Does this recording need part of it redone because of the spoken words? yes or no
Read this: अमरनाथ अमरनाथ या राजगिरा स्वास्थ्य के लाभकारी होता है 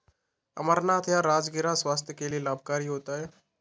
yes